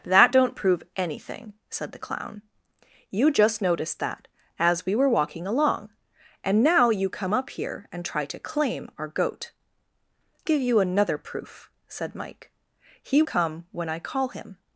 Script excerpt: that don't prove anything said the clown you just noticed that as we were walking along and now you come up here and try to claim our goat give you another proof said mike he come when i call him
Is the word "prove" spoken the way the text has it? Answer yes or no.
yes